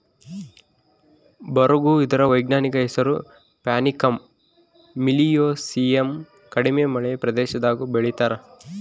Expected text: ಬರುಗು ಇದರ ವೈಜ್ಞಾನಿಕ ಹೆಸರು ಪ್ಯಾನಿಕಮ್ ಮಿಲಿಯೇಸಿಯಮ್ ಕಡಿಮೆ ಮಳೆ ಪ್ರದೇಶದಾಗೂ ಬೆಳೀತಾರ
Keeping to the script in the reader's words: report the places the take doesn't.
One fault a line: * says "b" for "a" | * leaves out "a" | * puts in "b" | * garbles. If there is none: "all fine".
all fine